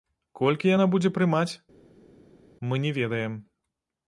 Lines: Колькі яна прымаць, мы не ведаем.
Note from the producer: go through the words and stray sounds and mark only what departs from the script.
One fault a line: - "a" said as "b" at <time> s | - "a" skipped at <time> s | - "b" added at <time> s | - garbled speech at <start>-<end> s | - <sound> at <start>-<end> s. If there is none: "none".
- "будзе" added at 0.9 s